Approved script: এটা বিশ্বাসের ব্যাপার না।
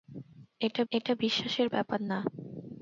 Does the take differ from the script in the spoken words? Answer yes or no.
yes